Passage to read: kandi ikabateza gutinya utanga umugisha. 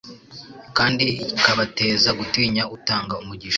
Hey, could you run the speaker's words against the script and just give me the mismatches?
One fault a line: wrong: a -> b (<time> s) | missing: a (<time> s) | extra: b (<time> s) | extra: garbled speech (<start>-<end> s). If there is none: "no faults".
no faults